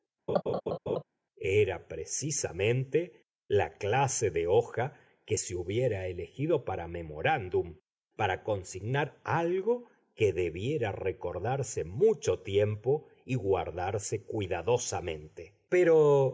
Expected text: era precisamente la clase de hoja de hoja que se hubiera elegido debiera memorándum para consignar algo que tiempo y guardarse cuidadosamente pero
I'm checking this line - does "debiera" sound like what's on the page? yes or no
no